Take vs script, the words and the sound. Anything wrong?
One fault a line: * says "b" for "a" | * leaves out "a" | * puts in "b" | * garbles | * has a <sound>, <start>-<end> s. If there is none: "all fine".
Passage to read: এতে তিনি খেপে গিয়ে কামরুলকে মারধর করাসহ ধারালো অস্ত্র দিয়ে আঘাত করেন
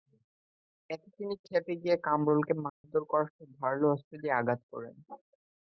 * has a dropout, 2.7-2.8 s